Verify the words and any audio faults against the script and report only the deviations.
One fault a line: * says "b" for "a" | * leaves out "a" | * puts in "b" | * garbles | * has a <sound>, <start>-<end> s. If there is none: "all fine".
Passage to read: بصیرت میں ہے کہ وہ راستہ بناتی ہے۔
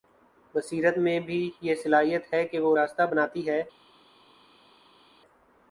* puts in "بھی یہ صلاحیت"